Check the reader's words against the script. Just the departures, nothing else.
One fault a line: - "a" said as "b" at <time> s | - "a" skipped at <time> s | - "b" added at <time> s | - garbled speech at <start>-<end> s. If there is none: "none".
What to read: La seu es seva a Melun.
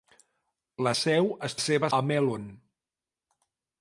none